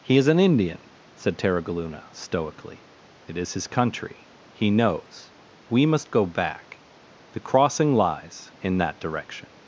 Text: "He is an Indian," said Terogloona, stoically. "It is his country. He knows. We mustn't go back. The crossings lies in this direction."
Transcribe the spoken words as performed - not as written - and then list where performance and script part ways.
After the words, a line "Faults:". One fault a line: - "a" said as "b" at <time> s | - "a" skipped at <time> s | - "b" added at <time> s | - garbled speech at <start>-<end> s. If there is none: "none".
"He is an Indian," said Terogloona, stoically. "It is his country. He knows. We must go back. The crossing lies in that direction."
Faults:
- "mustn't" said as "must" at 5.9 s
- "crossings" said as "crossing" at 7.4 s
- "this" said as "that" at 8.8 s